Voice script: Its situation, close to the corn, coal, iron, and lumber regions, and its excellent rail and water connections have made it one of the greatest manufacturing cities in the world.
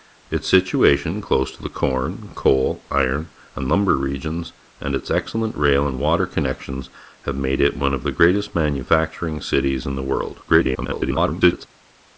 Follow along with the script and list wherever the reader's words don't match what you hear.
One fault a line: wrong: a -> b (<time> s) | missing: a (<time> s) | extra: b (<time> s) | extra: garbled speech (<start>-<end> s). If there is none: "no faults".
extra: garbled speech (10.5-11.7 s)